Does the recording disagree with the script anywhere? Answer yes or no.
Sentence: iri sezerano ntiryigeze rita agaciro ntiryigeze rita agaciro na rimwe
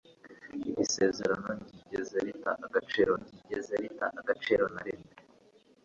no